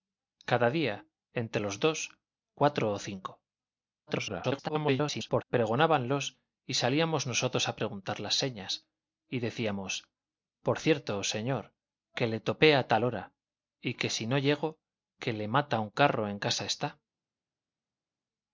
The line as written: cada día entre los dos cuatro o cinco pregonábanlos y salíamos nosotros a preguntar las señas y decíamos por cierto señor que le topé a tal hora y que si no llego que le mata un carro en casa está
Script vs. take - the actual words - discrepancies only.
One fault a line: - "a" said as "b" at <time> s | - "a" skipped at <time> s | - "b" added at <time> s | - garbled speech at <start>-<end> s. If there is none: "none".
- garbled speech at 4.1-5.4 s